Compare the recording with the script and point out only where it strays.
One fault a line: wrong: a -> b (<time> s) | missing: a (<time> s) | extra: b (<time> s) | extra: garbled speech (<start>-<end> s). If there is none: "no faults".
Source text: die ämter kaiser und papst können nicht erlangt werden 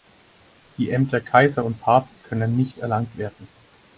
no faults